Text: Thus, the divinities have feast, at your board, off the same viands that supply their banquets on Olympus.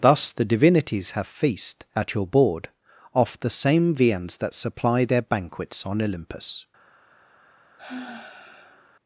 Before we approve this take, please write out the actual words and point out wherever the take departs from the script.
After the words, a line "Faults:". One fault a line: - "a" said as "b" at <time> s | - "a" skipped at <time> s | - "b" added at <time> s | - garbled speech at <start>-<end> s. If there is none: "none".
Thus, the divinities have feast, at your board, off the same viands that supply their banquets on Olympus.
Faults:
none